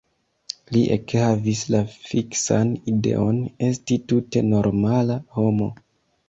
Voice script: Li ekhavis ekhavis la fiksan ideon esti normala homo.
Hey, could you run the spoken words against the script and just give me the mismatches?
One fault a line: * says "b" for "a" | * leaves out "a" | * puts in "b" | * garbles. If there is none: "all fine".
* leaves out "ekhavis"
* puts in "tute"